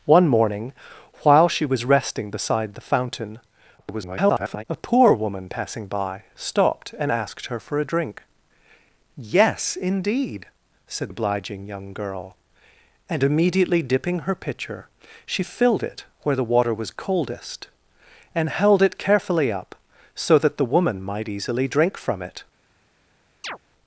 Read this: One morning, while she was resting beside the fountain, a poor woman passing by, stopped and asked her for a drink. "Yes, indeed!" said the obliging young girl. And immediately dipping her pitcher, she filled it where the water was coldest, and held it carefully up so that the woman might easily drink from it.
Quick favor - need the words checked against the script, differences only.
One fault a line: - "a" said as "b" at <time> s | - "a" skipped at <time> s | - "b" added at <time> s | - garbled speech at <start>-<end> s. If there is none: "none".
- garbled speech at 3.8-4.6 s
- "the" skipped at 11.1 s